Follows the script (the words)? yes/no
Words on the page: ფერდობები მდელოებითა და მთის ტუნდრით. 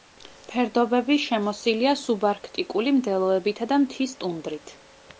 no